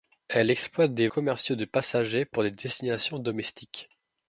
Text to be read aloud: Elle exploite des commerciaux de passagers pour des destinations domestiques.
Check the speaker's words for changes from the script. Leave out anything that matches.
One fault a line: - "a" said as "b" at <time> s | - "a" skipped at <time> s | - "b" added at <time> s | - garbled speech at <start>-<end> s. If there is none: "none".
none